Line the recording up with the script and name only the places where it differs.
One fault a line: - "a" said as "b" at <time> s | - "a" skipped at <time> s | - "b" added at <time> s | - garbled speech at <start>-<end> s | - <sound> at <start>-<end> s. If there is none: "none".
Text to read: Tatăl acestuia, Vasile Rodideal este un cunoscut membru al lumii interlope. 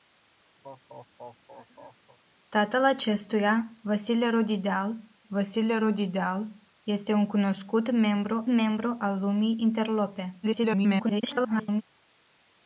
- laugh at 0.6-2.2 s
- "Vasile Rodideal" added at 5.3 s
- "membru" added at 8.5 s
- garbled speech at 10.4-11.8 s